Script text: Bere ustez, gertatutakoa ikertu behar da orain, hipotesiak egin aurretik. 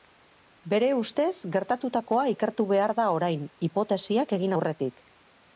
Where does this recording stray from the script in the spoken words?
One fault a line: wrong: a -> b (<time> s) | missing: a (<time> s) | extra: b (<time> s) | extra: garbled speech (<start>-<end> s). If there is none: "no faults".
no faults